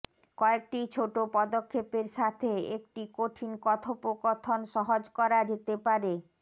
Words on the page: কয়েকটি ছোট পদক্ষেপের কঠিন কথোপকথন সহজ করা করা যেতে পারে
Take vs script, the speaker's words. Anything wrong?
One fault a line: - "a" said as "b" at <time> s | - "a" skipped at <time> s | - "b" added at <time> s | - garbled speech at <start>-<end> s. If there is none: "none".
- "সাথে একটি" added at 2.2 s
- "করা" skipped at 5.4 s